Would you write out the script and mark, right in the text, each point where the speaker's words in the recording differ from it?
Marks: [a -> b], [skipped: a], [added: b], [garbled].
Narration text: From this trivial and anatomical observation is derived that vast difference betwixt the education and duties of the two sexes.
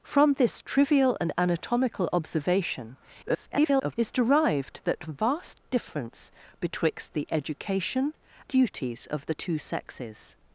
From this trivial and anatomical observation [garbled] is derived that vast difference betwixt the education [skipped: and] duties of the two sexes.